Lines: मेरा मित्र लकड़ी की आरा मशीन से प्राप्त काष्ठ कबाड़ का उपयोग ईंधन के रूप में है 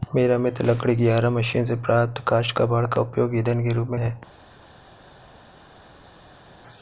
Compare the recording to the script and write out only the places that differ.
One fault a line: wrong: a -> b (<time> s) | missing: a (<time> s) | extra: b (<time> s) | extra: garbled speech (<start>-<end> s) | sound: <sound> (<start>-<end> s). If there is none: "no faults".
no faults